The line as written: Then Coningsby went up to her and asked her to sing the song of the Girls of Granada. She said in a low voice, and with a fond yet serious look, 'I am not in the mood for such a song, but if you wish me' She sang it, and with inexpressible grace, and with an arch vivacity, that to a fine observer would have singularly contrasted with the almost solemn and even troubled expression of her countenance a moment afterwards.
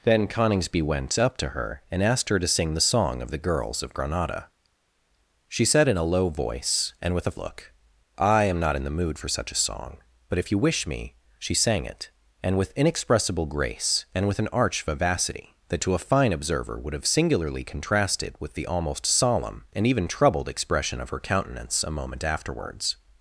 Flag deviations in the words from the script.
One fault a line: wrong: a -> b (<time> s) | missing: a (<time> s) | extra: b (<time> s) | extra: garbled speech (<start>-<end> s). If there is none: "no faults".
missing: fond yet serious (7.4 s)